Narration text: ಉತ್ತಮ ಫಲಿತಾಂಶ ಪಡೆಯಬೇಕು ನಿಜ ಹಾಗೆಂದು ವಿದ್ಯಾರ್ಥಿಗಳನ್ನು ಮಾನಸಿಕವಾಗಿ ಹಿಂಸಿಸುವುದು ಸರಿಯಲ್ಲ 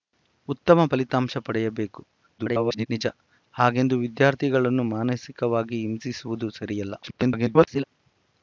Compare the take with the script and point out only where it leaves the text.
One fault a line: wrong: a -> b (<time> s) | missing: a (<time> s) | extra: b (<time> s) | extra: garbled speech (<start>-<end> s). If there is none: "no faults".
extra: garbled speech (2.4-2.9 s)
extra: garbled speech (7.0-7.8 s)